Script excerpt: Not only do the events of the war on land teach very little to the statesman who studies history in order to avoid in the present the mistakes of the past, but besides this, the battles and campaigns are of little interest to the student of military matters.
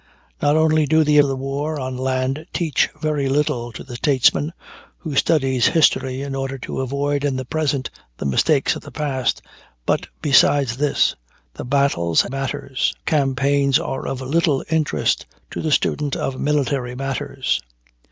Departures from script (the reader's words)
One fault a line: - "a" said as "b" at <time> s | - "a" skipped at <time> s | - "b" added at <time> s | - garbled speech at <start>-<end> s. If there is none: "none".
- "events" skipped at 1.2 s
- "and" said as "matters" at 12.3 s